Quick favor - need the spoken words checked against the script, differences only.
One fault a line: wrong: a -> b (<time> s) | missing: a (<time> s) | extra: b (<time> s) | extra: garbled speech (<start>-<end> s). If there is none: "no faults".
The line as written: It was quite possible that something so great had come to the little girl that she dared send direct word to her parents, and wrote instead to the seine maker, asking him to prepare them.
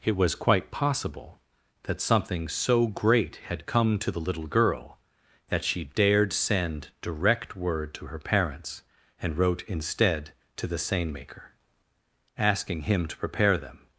no faults